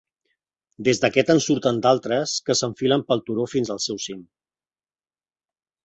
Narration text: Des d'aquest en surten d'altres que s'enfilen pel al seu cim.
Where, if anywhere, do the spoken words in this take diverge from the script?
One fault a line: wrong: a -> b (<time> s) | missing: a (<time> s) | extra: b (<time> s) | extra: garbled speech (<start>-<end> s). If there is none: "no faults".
extra: turó fins (3.3 s)